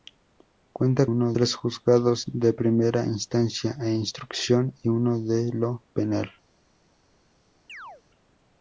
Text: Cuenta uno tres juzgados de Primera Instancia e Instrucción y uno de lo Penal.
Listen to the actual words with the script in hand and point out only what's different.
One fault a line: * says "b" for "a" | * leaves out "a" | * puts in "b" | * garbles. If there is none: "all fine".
all fine